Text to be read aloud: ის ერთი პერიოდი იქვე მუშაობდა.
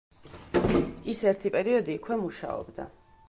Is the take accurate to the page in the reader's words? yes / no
yes